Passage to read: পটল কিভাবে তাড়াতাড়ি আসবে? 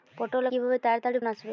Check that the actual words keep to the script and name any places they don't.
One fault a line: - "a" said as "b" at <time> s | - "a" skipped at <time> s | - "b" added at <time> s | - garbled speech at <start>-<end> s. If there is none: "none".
none